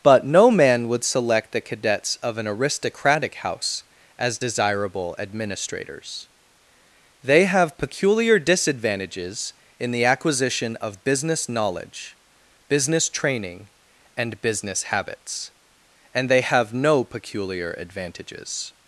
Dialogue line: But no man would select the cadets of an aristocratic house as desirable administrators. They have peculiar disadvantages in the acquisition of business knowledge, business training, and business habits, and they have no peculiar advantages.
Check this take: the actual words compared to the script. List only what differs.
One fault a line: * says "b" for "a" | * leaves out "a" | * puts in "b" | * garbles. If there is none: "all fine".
all fine